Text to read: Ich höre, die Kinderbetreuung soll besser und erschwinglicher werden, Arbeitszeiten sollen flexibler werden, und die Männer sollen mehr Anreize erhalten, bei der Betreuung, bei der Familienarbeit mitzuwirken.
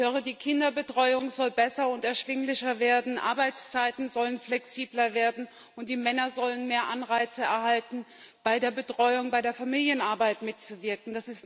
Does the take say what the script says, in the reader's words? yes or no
yes